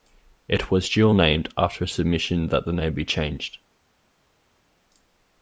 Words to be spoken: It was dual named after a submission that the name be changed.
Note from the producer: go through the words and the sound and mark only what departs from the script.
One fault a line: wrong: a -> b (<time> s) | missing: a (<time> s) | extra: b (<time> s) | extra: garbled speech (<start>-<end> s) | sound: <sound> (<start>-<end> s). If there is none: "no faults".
no faults